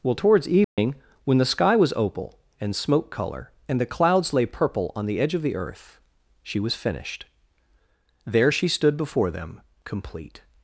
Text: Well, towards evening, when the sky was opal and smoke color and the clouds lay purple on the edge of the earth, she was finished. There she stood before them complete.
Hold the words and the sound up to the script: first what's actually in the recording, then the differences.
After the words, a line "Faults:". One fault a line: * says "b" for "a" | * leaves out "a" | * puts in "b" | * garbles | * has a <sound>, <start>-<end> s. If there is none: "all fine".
Well, towards evening, when the sky was opal and smoke color and the clouds lay purple on the edge of the earth, she was finished. There she stood before them complete.
Faults:
* has a dropout, 0.6-0.8 s